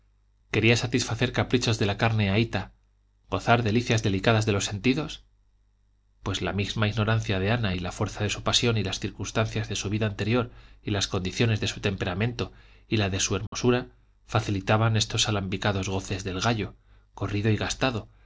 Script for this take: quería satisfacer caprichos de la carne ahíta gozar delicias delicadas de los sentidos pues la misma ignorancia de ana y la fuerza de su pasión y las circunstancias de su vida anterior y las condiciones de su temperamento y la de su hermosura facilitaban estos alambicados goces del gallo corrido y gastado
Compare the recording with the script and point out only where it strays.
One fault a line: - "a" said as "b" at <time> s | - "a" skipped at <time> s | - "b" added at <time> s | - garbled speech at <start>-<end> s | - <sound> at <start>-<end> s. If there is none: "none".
- dropout at 13.5-13.5 s